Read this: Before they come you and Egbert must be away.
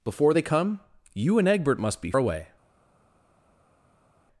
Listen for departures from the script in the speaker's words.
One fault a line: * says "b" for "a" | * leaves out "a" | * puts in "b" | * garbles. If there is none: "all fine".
all fine